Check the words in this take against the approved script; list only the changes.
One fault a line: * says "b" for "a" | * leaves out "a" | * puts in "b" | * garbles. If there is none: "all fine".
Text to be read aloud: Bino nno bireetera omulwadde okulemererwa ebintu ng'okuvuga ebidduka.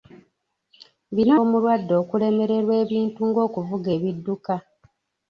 * leaves out "nno bireetera"